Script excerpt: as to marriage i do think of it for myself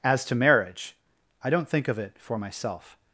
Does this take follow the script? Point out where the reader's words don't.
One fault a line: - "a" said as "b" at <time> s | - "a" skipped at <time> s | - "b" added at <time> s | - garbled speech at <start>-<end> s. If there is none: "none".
- "do" said as "don't" at 1.5 s